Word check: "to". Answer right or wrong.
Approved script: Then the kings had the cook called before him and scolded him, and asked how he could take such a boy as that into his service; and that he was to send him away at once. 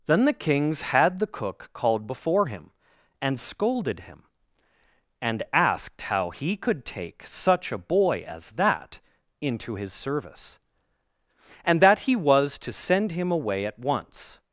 right